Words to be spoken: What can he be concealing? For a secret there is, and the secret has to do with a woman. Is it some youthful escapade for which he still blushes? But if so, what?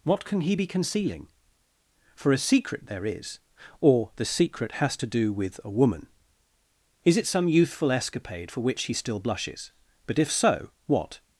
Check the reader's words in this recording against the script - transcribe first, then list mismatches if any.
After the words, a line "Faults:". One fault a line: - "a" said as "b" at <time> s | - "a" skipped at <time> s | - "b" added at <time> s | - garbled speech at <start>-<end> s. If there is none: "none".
What can he be concealing? For a secret there is, or the secret has to do with a woman. Is it some youthful escapade for which he still blushes? But if so, what?
Faults:
- "and" said as "or" at 3.8 s